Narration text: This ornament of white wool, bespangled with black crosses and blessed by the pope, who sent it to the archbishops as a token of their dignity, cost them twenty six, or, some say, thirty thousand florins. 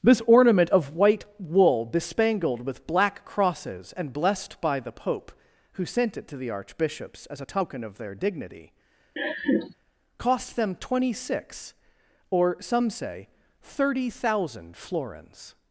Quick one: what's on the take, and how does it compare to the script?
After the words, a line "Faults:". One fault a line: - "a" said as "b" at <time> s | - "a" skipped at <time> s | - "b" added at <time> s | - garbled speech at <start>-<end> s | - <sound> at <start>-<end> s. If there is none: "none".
This ornament of white wool, bespangled with black crosses and blessed by the pope, who sent it to the archbishops as a token of their dignity, cost them twenty six, or, some say, thirty thousand florins.
Faults:
- laugh at 9.2-9.7 s